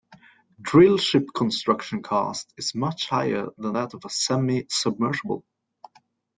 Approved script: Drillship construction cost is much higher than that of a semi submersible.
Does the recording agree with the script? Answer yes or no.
yes